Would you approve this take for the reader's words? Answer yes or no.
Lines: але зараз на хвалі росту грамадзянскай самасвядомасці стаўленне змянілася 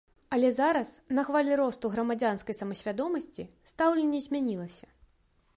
yes